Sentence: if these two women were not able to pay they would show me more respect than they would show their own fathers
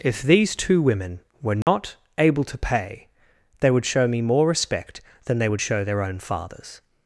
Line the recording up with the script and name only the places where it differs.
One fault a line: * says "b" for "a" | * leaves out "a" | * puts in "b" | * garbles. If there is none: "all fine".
all fine